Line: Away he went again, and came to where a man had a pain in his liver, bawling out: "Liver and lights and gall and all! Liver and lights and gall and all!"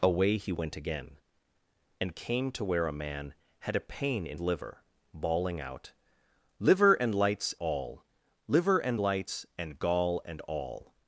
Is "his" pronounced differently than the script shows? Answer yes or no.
yes